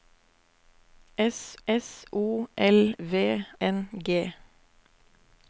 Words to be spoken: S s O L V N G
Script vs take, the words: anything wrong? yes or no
no